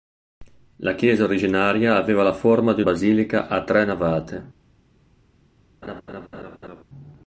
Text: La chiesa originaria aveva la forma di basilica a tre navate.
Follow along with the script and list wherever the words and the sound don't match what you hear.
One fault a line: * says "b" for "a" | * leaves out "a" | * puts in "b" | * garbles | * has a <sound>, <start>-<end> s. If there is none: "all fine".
* has a laugh, 5.8-6.8 s